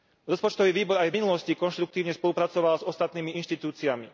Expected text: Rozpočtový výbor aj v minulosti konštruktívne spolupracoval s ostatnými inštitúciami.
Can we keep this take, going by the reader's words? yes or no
yes